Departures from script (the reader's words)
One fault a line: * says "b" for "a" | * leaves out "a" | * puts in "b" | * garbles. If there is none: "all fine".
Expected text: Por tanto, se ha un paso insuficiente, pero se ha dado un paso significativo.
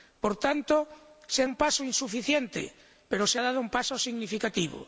all fine